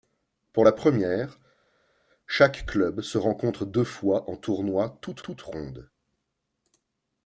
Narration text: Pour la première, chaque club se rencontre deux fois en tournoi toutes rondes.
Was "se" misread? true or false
false